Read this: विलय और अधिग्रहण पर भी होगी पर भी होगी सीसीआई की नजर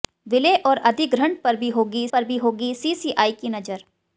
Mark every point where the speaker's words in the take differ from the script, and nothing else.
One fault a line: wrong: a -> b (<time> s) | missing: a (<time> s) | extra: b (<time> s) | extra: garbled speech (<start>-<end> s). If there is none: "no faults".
no faults